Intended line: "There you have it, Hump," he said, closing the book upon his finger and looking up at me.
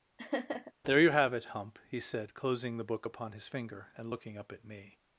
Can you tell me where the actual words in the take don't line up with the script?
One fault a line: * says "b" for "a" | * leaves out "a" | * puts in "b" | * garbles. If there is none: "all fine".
all fine